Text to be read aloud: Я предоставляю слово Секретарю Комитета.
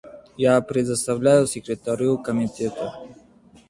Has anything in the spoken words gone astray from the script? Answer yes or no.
yes